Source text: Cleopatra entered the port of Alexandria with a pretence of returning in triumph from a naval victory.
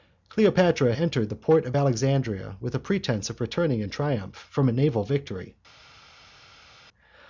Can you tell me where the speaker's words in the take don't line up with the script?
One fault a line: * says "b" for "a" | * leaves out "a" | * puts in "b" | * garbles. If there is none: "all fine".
all fine